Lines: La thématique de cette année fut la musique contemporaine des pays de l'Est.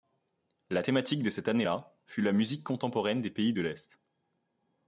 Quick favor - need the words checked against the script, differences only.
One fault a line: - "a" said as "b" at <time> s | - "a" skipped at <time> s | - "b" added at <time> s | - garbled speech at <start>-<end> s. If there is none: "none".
- "là" added at 1.6 s